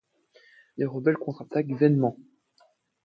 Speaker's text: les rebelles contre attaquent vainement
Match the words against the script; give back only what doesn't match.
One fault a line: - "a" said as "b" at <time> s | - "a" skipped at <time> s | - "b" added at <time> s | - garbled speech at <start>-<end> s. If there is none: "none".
none